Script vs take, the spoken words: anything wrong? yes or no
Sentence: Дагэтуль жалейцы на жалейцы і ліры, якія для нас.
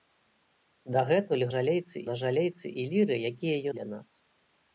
no